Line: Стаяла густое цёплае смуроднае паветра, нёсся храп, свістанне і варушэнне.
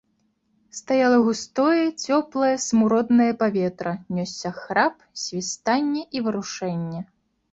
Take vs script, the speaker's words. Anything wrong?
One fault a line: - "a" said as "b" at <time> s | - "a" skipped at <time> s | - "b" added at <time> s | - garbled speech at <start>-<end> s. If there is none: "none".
none